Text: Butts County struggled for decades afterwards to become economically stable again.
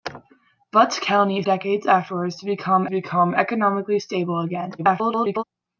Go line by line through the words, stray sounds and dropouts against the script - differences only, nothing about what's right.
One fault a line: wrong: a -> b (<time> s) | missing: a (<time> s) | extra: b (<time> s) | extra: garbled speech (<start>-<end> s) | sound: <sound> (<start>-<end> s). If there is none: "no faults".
missing: struggled for (1.4 s)
extra: become (2.9 s)
extra: garbled speech (4.8-5.4 s)